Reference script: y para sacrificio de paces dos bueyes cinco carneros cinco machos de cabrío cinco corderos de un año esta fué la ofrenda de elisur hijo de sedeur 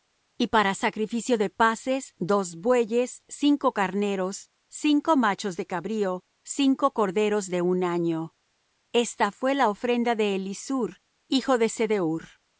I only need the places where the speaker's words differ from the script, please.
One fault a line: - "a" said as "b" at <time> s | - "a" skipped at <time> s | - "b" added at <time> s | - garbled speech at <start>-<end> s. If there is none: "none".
none